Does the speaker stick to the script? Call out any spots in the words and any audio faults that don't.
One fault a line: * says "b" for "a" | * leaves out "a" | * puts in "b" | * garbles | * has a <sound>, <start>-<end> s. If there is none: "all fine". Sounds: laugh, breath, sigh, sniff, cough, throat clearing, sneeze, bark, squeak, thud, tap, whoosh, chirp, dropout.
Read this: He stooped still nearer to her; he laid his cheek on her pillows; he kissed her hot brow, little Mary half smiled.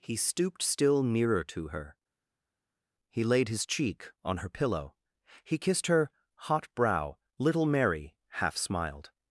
* says "pillow" for "pillows"